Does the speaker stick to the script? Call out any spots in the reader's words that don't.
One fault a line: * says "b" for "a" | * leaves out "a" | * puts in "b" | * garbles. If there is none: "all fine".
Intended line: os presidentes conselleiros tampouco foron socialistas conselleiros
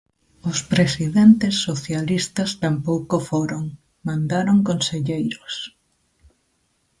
* says "socialistas" for "conselleiros"
* says "mandaron" for "socialistas"